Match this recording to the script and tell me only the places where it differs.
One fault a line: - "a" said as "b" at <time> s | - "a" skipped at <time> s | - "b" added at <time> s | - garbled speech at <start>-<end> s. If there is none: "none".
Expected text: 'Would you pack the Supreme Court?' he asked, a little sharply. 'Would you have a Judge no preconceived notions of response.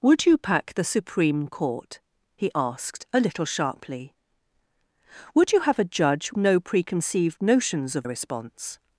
none